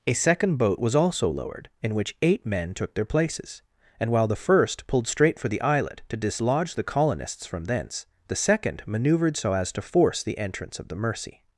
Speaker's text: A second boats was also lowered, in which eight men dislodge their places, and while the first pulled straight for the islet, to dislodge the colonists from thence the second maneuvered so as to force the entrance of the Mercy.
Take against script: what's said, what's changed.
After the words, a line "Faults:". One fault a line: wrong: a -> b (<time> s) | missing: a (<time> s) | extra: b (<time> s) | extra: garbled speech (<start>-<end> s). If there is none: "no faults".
A second boat was also lowered, in which eight men took their places, and while the first pulled straight for the islet, to dislodge the colonists from thence the second maneuvered so as to force the entrance of the Mercy.
Faults:
wrong: boats -> boat (0.6 s)
wrong: dislodge -> took (2.7 s)